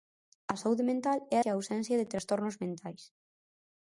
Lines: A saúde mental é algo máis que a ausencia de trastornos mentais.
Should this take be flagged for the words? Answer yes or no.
yes